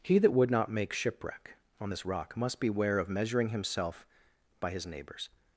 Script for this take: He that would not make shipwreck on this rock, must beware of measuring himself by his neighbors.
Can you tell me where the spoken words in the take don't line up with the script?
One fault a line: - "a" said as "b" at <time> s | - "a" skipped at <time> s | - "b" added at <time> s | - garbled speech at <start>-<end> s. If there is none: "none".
none